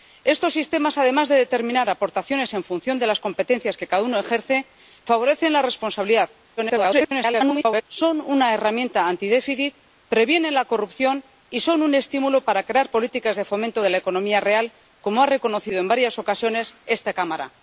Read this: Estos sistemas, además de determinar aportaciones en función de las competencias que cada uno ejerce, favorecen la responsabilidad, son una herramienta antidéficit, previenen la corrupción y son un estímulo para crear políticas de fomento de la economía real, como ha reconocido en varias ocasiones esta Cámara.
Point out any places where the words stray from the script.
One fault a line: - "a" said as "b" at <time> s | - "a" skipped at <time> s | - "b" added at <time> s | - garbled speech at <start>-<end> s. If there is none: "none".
- garbled speech at 6.6-7.8 s